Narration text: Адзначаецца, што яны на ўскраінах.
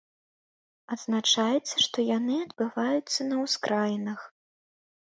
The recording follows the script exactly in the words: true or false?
false